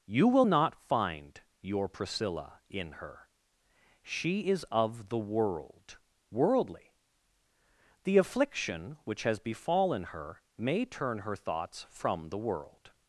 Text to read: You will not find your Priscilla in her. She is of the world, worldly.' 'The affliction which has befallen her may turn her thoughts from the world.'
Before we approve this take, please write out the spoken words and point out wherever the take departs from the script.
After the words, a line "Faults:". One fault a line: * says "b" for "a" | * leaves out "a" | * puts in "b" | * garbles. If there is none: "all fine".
You will not find your Priscilla in her. She is of the world, worldly.' 'The affliction which has befallen her may turn her thoughts from the world.'
Faults:
all fine